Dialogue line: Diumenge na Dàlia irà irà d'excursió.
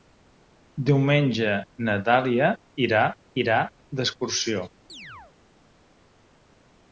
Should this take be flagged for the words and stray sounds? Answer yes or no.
yes